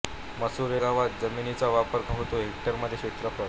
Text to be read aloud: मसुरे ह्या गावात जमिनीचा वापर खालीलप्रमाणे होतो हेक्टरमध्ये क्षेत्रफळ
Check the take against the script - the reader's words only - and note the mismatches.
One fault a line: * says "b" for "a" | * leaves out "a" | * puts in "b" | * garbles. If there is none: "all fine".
* leaves out "ह्या"
* leaves out "खालीलप्रमाणे"